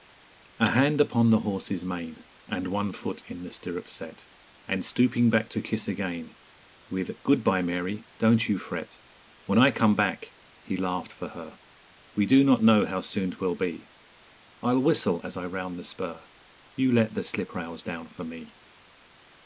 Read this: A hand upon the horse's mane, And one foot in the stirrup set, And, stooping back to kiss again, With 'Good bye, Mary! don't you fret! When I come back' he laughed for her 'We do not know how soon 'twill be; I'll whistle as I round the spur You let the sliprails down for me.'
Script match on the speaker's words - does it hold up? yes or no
yes